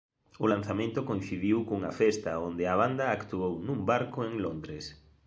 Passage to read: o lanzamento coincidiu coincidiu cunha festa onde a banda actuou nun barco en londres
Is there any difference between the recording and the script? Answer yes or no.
yes